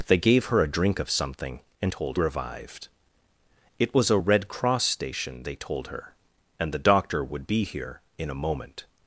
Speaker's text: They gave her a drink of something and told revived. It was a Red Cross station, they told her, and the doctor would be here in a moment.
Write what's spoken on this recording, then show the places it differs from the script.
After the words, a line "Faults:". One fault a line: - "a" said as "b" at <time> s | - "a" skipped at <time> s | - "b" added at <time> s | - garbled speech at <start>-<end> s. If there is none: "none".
They gave her a drink of something and told revived. It was a Red Cross station, they told her, and the doctor would be here in a moment.
Faults:
none